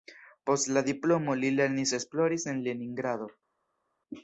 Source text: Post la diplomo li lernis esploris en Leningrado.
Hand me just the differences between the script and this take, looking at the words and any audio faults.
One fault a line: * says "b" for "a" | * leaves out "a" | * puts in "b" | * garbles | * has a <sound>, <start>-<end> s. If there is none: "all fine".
all fine